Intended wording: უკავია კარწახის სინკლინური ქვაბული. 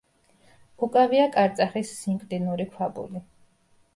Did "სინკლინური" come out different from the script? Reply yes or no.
no